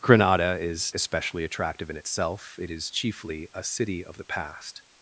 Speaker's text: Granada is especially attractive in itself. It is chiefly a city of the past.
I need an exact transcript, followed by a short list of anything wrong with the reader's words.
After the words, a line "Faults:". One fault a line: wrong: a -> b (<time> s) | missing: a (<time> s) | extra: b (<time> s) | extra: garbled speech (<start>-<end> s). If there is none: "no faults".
Granada is especially attractive in itself. It is chiefly a city of the past.
Faults:
no faults